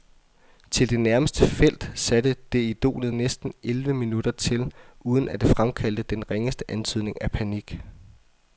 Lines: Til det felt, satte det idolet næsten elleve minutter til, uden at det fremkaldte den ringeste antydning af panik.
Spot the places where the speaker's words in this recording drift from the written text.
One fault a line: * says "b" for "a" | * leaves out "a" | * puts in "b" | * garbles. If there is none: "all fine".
* puts in "nærmeste"